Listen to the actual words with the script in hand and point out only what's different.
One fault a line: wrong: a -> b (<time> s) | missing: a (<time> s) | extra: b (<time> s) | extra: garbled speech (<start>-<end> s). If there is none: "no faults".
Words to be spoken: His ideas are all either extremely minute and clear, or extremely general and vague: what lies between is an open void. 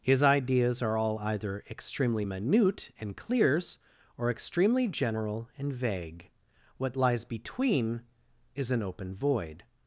wrong: clear -> clears (3.2 s)